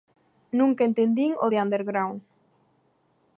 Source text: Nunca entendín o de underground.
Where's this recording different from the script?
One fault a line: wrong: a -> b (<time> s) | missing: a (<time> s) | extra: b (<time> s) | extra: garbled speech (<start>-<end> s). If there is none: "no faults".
no faults